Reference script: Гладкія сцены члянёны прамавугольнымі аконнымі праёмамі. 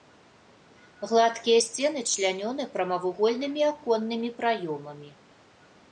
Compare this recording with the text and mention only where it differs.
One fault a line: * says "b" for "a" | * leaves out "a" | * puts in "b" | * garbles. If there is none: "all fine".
all fine